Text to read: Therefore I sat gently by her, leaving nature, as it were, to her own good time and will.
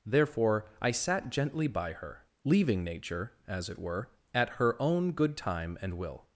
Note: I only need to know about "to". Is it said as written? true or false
false